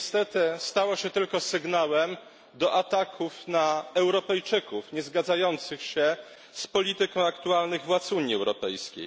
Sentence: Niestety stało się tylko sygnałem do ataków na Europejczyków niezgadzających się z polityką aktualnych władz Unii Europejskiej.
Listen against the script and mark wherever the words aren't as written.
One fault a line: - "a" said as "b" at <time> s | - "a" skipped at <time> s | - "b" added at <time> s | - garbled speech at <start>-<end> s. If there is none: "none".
none